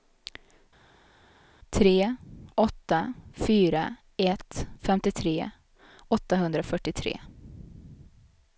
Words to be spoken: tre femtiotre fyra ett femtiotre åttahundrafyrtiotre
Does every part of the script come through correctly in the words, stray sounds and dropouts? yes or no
no